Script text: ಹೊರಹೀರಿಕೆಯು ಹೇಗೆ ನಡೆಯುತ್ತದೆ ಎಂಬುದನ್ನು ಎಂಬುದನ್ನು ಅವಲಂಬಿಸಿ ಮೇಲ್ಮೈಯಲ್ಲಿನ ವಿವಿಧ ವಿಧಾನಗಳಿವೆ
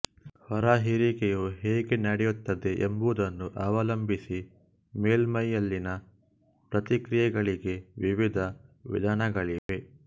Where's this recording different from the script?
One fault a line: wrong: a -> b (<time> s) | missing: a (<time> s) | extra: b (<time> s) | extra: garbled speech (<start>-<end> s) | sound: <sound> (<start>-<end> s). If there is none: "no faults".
missing: ಎಂಬುದನ್ನು (3.5 s)
extra: ಪ್ರತಿಕ್ರಿಯೆಗಳಿಗೆ (6.7 s)
sound: dropout (9.6-9.7 s)